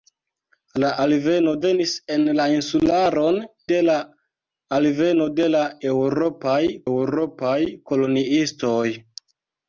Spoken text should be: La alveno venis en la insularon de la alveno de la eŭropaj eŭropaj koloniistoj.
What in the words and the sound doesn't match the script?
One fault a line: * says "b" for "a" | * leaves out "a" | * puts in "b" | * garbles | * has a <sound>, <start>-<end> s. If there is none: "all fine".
all fine